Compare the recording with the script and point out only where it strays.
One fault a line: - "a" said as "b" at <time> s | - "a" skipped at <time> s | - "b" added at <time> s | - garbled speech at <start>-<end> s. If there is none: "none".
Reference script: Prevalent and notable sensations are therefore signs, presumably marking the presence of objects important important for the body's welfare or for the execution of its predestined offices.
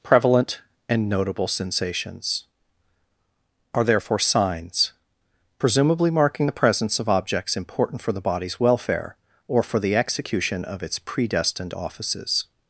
- "important" skipped at 8.0 s